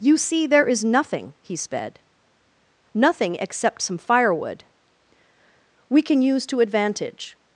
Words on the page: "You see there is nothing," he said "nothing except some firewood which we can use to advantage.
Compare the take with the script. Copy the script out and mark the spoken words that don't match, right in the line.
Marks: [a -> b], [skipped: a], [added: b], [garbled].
"You see there is nothing," he [said -> sped] "nothing except some firewood [skipped: which] we can use to advantage.